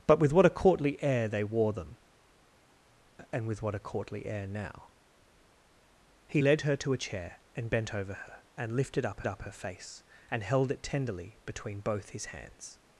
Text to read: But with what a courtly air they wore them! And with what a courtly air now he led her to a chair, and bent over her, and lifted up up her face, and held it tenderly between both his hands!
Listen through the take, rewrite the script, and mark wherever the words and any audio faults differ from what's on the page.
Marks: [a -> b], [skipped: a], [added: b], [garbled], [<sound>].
But with what a courtly air they wore them! And with what a courtly air now he led her to a chair, and bent over her, and lifted up up her face, and held it tenderly between both his hands!